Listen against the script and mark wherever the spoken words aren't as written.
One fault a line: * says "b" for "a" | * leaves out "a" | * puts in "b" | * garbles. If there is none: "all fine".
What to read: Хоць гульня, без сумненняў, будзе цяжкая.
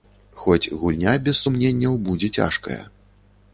all fine